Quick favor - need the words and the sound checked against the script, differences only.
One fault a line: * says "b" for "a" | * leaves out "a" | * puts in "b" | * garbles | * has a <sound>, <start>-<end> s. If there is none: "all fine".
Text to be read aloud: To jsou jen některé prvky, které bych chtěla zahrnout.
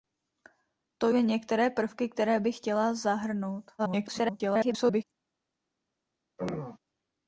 * leaves out "jsou"
* garbles
* has a throat clearing, 6.4-6.8 s